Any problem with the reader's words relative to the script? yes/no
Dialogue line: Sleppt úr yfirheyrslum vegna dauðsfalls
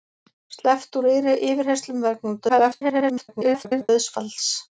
yes